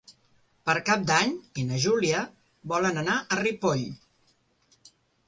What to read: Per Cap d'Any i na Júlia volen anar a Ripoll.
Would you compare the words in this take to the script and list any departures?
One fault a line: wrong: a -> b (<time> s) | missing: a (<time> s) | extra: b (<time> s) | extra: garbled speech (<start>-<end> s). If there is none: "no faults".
no faults